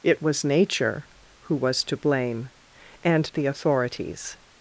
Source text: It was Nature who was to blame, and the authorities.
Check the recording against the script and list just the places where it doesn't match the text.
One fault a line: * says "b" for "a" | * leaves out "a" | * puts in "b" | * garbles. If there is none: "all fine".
all fine